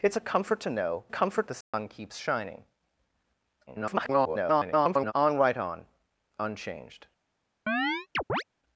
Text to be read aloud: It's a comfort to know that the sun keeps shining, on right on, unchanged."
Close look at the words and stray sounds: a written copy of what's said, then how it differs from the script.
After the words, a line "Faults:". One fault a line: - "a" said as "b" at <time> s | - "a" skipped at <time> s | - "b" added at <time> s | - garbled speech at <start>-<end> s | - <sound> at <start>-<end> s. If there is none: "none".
It's a comfort to know comfort the sun keeps shining, [garbled] on right on, unchanged."
Faults:
- "that" said as "comfort" at 1.1 s
- dropout at 1.6-1.7 s
- garbled speech at 3.7-5.1 s
- chirp at 7.7-8.4 s